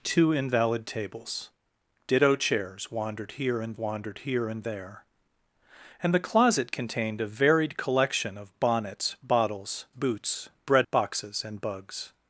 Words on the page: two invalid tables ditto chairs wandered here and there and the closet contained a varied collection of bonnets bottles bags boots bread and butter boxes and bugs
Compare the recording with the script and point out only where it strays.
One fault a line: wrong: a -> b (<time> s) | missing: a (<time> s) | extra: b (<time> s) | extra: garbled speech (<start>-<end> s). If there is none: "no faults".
extra: wandered here and (3.8 s)
missing: bags (9.8 s)
missing: and butter (10.9 s)